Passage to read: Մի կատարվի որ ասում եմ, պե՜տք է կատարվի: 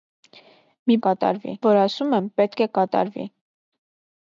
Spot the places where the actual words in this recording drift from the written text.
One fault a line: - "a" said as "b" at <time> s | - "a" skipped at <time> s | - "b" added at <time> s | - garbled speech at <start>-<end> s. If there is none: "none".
none